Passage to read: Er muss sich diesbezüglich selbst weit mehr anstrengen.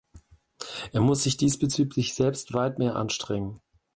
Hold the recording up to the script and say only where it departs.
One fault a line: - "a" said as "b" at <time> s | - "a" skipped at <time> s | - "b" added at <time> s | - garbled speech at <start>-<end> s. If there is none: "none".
none